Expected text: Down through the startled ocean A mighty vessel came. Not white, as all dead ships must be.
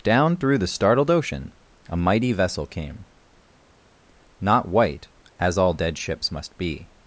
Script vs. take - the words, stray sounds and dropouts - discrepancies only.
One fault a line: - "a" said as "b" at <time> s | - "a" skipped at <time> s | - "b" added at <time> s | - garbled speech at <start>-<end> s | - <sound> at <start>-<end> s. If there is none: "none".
none